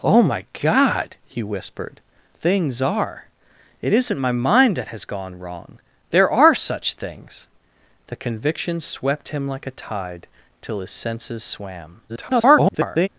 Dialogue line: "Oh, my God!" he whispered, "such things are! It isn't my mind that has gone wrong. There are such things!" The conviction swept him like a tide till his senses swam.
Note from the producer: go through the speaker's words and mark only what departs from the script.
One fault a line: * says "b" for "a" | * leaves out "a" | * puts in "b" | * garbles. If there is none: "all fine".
* leaves out "such"
* garbles